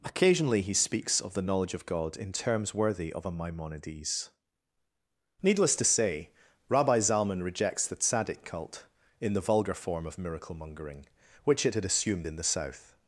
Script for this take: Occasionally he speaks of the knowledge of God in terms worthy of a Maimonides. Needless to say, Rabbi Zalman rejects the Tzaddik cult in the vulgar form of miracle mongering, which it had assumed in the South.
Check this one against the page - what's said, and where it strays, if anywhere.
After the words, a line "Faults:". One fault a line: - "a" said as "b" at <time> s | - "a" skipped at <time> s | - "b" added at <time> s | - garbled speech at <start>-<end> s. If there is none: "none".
Occasionally he speaks of the knowledge of God in terms worthy of a Maimonides. Needless to say, Rabbi Zalman rejects the Tzaddik cult in the vulgar form of miracle mongering, which it had assumed in the South.
Faults:
none